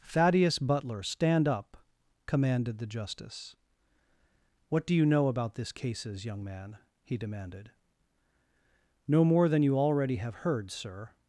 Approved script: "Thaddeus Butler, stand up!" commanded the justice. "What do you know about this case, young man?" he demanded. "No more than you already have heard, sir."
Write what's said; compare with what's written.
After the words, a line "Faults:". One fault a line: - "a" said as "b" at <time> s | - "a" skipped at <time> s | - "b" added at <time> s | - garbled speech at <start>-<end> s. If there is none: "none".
"Thaddeus Butler, stand up!" commanded the justice. "What do you know about this cases, young man?" he demanded. "No more than you already have heard, sir."
Faults:
- "case" said as "cases" at 5.7 s